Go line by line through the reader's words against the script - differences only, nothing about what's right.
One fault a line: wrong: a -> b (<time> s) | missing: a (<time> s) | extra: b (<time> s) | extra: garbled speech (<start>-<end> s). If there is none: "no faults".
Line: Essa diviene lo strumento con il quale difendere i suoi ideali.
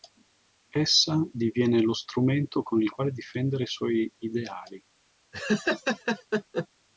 no faults